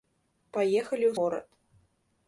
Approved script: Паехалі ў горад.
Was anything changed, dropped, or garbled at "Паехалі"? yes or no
no